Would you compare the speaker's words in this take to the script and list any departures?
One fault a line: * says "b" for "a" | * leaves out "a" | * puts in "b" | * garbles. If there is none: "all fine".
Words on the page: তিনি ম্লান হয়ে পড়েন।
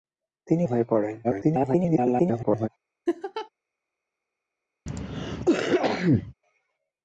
* leaves out "ম্লান"
* garbles